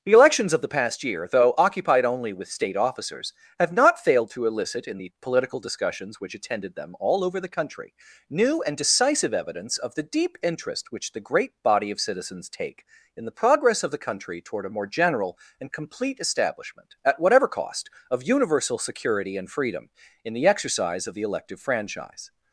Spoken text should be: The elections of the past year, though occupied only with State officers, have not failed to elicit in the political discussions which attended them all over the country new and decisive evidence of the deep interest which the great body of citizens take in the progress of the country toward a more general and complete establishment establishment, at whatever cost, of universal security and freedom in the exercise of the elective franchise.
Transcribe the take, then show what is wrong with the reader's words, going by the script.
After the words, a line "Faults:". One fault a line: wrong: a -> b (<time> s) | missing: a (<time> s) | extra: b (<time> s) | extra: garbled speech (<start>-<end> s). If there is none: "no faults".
The elections of the past year, though occupied only with State officers, have not failed to elicit in the political discussions which attended them all over the country new and decisive evidence of the deep interest which the great body of citizens take in the progress of the country toward a more general and complete establishment, at whatever cost, of universal security and freedom in the exercise of the elective franchise.
Faults:
missing: establishment (16.9 s)